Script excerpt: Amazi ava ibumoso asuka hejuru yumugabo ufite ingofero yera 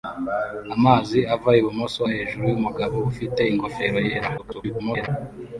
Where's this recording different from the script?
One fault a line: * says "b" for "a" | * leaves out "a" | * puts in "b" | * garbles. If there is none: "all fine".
* leaves out "asuka"
* garbles